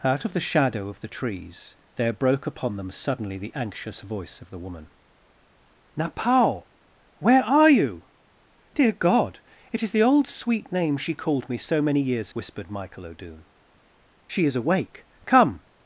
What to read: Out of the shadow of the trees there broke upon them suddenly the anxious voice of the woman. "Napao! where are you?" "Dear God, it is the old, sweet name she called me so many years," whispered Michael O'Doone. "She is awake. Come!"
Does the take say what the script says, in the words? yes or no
yes